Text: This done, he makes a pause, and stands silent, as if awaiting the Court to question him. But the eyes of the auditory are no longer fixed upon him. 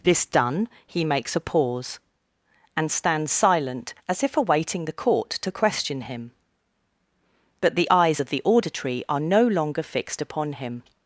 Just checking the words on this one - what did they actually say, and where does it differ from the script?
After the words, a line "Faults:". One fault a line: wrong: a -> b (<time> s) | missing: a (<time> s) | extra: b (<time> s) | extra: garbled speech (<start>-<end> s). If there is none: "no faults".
This done, he makes a pause, and stands silent, as if awaiting the Court to question him. But the eyes of the auditory are no longer fixed upon him.
Faults:
no faults